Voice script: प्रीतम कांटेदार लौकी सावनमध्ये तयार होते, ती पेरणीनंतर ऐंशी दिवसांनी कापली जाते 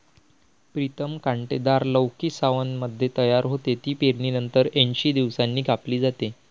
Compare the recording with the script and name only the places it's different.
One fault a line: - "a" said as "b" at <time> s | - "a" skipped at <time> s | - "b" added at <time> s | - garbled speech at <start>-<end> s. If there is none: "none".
none